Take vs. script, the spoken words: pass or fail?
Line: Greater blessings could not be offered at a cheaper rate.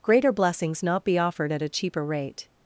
fail